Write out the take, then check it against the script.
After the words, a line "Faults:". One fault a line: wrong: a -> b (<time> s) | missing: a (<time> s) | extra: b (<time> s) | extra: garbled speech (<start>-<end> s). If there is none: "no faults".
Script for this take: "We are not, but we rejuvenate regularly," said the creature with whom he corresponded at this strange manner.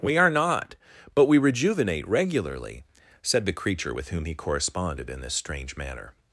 "We are not, but we rejuvenate regularly," said the creature with whom he corresponded in this strange manner.
Faults:
wrong: at -> in (5.1 s)